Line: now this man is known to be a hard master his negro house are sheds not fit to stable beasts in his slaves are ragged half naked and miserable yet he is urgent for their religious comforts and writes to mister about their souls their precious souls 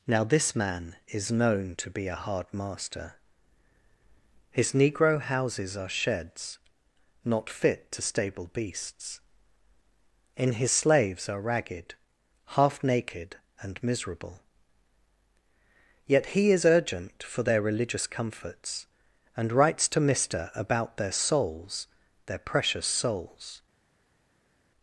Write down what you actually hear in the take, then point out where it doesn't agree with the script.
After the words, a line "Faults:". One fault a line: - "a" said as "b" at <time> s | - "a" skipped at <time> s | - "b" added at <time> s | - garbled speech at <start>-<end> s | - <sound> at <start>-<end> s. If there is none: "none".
now this man is known to be a hard master his negro houses are sheds not fit to stable beasts in his slaves are ragged half naked and miserable yet he is urgent for their religious comforts and writes to mister about their souls their precious souls
Faults:
- "house" said as "houses" at 5.2 s